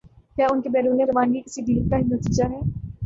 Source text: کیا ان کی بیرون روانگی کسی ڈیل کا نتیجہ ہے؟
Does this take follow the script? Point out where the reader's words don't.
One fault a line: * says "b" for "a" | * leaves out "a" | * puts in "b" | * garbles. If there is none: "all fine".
all fine